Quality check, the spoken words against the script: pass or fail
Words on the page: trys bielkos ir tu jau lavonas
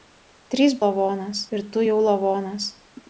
fail